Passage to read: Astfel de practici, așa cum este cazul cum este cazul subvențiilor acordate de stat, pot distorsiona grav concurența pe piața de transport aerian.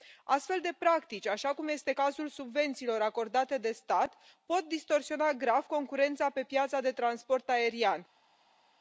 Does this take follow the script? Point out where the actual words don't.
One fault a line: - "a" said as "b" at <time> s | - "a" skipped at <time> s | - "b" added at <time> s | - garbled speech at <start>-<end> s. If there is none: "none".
- "cum este cazul" skipped at 2.3 s